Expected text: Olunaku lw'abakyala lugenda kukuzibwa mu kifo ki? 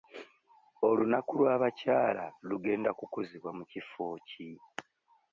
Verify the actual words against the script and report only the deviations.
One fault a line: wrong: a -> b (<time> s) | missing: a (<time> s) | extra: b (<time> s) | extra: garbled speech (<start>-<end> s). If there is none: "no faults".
no faults